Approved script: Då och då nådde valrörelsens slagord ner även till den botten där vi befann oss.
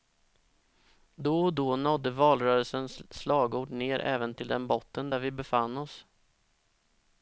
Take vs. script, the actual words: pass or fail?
pass